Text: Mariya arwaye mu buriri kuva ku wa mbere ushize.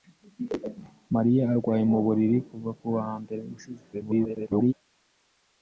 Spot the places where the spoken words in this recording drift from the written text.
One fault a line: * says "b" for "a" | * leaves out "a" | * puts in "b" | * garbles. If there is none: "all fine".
* garbles